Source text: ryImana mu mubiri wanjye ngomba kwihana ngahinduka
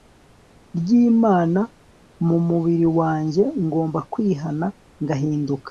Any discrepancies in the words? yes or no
no